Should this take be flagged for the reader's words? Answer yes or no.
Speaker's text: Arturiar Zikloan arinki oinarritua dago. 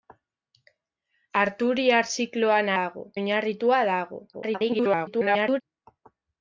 yes